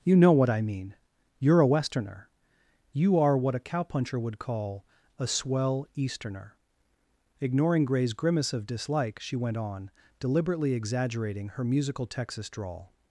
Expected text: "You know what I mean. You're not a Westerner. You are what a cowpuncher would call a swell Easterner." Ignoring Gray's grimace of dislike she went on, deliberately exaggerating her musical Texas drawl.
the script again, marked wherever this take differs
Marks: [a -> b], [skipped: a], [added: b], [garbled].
"You know what I mean. You're [skipped: not] a Westerner. You are what a cowpuncher would call a swell Easterner." Ignoring Gray's grimace of dislike she went on, deliberately exaggerating her musical Texas drawl.